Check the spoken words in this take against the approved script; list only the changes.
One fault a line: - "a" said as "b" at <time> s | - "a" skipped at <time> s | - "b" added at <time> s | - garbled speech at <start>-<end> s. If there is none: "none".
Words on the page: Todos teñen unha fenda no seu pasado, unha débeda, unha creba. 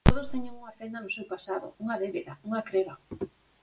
none